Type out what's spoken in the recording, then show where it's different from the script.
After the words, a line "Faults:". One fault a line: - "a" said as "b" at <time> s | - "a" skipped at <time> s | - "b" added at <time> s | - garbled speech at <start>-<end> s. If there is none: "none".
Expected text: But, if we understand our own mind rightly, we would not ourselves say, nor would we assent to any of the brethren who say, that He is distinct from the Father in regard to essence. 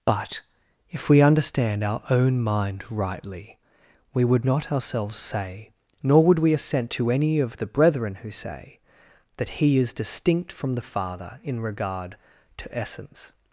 But, if we understand our own mind rightly, we would not ourselves say, nor would we assent to any of the brethren who say, that He is distinct from the Father in regard to essence.
Faults:
none